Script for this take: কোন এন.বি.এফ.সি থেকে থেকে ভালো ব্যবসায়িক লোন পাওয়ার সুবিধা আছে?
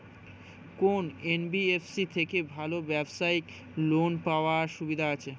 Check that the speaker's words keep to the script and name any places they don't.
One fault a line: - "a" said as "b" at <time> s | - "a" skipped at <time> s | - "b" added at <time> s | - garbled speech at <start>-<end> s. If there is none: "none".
- "থেকে" skipped at 2.4 s